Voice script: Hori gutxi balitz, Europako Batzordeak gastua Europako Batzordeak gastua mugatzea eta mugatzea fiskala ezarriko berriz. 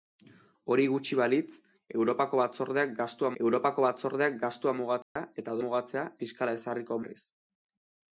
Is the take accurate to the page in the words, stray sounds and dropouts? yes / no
no